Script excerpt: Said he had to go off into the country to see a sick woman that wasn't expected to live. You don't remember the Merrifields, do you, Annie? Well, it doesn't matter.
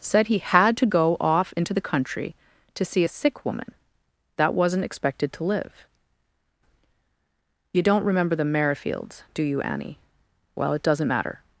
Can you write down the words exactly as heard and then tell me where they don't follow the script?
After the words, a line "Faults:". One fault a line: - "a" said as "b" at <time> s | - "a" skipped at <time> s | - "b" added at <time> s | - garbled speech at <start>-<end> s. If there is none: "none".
Said he had to go off into the country to see a sick woman that wasn't expected to live. You don't remember the Merrifields, do you, Annie? Well, it doesn't matter.
Faults:
none